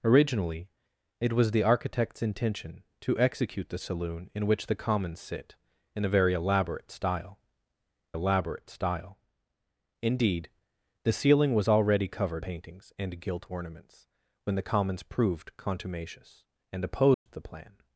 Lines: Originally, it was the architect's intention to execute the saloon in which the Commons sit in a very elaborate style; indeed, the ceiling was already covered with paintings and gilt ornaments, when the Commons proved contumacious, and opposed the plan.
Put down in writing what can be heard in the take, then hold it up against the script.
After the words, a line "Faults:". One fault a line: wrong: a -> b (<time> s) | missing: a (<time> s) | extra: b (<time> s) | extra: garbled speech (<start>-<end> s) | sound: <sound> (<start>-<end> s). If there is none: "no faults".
Originally, it was the architect's intention to execute the saloon in which the Commons sit in a very elaborate style elaborate style; indeed, the ceiling was already covered paintings and gilt ornaments, when the Commons proved contumacious, and opposed the plan.
Faults:
extra: elaborate style (8.1 s)
missing: with (12.4 s)
sound: dropout (17.1-17.3 s)